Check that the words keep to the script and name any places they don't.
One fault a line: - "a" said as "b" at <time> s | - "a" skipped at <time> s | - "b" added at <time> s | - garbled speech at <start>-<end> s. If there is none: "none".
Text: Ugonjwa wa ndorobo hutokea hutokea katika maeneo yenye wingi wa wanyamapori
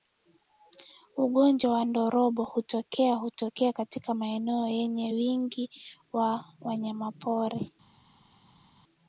none